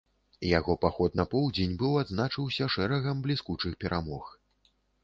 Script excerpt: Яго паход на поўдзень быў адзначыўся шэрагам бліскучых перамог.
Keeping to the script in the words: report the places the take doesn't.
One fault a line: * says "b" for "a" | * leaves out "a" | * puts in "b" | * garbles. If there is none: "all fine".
all fine